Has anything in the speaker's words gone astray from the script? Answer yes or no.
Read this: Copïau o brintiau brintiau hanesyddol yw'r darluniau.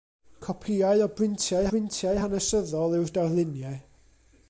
no